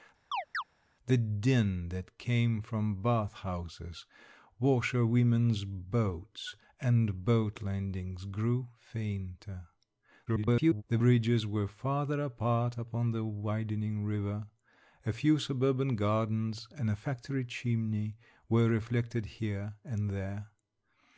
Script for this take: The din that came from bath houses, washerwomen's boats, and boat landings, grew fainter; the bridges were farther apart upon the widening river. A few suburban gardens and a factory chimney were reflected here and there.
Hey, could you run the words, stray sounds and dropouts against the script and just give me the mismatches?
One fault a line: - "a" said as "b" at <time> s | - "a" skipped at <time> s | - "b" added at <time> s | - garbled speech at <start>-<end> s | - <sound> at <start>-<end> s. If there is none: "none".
- chirp at 0.3-0.6 s
- garbled speech at 10.3-10.8 s